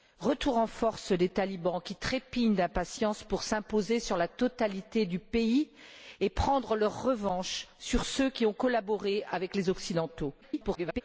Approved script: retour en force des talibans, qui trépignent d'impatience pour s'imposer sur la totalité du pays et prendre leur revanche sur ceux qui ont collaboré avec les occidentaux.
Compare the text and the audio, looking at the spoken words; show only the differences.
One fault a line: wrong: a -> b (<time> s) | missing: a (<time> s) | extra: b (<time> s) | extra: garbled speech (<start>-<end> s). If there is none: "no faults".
extra: garbled speech (10.4-11.0 s)